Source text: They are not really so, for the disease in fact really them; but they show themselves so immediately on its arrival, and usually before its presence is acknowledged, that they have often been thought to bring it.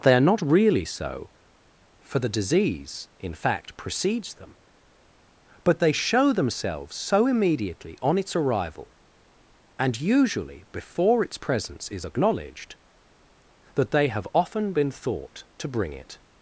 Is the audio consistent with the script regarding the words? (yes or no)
no